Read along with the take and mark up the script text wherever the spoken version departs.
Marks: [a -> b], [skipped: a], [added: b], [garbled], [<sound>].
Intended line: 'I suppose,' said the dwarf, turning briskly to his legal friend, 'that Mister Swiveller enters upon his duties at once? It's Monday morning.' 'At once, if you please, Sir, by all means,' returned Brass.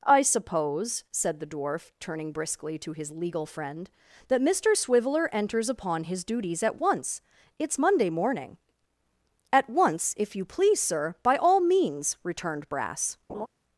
'I suppose,' said the dwarf, turning briskly to his legal friend, 'that Mister Swiveller enters upon his duties at once? It's Monday morning.' 'At once, if you please, Sir, by all means,' returned Brass. [laugh]